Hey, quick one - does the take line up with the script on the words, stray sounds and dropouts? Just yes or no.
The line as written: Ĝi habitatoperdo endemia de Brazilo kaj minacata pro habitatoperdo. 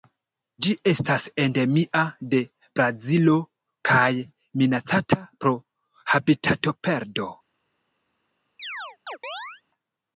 no